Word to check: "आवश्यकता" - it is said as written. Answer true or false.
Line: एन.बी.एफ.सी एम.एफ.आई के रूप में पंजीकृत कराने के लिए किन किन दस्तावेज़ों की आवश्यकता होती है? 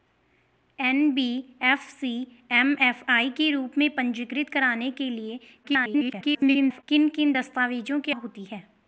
false